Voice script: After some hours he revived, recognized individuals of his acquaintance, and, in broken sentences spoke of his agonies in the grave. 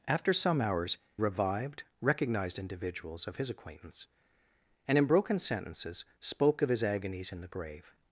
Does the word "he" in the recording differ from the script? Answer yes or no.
yes